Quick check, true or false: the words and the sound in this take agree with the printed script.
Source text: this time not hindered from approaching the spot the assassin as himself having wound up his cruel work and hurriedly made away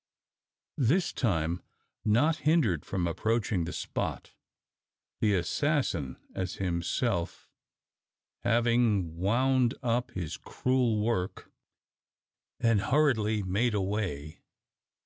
true